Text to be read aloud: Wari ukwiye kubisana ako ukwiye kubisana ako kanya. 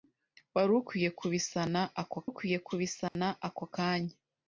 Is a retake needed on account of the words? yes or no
no